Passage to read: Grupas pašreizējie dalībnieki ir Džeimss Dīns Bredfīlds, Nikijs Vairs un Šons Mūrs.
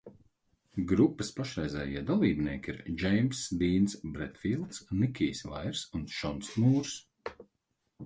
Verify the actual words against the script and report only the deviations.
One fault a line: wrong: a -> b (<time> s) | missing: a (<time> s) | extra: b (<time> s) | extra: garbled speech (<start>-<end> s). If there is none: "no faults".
no faults